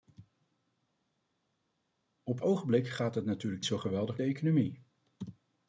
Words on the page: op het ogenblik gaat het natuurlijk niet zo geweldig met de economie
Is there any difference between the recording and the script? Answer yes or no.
yes